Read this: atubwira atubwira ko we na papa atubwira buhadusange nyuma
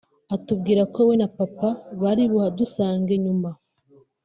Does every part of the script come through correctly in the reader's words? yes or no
no